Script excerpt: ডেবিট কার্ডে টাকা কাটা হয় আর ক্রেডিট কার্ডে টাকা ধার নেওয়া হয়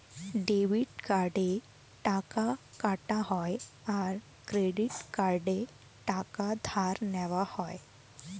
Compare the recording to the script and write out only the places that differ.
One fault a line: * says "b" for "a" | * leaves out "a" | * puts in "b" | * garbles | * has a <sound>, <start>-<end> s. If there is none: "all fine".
all fine